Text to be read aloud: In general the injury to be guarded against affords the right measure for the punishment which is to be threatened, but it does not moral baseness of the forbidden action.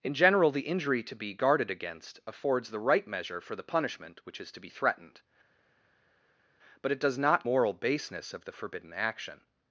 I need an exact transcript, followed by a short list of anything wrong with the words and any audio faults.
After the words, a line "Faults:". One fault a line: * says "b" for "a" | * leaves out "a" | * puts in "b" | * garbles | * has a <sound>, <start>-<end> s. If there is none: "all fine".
In general the injury to be guarded against affords the right measure for the punishment which is to be threatened, but it does not moral baseness of the forbidden action.
Faults:
all fine